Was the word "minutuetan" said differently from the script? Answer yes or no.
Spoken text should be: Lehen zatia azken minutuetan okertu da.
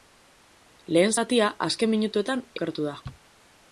no